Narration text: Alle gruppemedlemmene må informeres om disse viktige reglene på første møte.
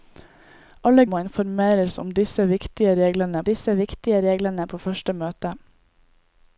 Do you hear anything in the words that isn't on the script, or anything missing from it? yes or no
yes